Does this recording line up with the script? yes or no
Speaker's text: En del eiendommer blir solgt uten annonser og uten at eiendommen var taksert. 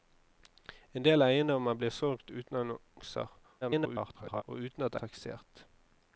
no